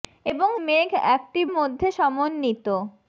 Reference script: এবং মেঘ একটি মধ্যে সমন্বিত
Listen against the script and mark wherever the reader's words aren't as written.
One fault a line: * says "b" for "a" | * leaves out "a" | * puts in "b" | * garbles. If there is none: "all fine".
all fine